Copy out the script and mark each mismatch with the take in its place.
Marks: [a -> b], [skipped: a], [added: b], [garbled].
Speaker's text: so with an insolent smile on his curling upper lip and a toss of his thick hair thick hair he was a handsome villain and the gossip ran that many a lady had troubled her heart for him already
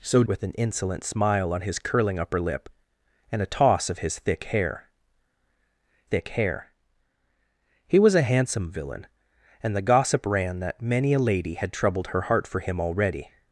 so with an insolent smile on his curling upper lip and a toss of his thick hair thick hair he was a handsome villain and the gossip ran that many a lady had troubled her heart for him already